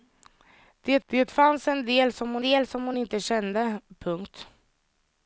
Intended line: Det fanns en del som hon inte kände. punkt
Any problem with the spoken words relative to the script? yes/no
yes